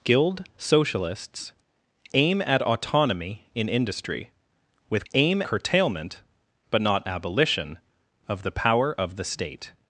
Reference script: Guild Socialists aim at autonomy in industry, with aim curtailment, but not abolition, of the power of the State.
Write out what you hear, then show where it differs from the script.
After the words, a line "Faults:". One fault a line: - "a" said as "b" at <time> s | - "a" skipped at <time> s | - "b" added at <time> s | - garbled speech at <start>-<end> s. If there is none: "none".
Guild Socialists aim at autonomy in industry, with aim curtailment, but not abolition, of the power of the State.
Faults:
none